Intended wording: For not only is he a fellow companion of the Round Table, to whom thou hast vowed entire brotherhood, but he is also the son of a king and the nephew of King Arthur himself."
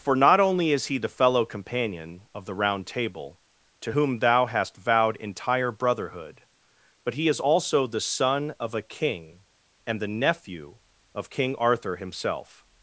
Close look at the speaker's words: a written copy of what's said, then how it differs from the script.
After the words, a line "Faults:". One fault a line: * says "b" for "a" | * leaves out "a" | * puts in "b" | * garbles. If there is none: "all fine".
For not only is he the fellow companion of the Round Table, to whom thou hast vowed entire brotherhood, but he is also the son of a king and the nephew of King Arthur himself."
Faults:
* says "the" for "a"